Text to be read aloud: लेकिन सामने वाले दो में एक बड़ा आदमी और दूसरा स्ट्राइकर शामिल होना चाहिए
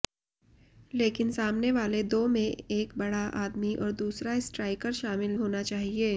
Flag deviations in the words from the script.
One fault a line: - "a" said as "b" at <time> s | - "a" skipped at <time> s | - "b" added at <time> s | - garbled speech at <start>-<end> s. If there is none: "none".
none